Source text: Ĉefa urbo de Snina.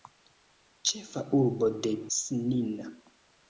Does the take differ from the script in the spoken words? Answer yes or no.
no